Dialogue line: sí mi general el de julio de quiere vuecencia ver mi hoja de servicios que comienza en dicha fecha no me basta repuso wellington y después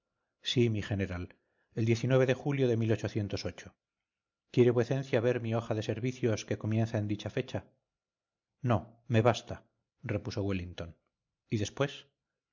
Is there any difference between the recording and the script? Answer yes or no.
no